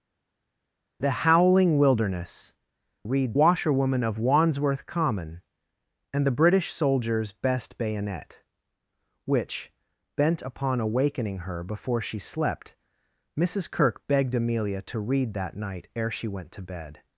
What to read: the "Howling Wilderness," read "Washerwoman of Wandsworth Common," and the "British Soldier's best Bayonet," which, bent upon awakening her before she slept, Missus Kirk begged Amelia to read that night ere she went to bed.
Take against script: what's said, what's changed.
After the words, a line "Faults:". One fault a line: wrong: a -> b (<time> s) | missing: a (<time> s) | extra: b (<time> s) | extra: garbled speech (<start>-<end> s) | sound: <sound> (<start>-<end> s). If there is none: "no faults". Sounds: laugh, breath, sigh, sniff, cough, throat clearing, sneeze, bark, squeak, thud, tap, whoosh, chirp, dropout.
the "Howling Wilderness," read "Washerwoman of Wandsworth Common," and the "British Soldier's best Bayonet," which, bent upon awakening her before she slept, Missus Kirk begged Amelia to read that night ere she went to bed.
Faults:
no faults